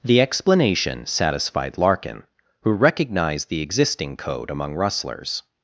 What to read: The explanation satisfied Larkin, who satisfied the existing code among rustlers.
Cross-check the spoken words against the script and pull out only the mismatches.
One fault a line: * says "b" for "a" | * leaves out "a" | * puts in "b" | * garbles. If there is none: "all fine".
* says "recognized" for "satisfied"